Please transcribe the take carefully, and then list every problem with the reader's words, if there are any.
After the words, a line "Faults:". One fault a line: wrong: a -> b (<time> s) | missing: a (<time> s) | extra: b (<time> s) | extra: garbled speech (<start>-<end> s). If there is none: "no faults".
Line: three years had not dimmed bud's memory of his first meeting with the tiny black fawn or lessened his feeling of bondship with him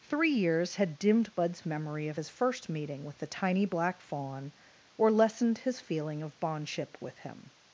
three years had dimmed bud's memory of his first meeting with the tiny black fawn or lessened his feeling of bondship with him
Faults:
missing: not (1.0 s)